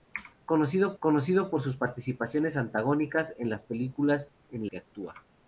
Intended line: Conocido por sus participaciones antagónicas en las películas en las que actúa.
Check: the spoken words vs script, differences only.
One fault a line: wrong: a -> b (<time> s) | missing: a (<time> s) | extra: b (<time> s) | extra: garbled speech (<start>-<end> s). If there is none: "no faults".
extra: conocido (1.0 s)
missing: las (4.7 s)